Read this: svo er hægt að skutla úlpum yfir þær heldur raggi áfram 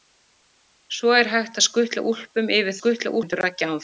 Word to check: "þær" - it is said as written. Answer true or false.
false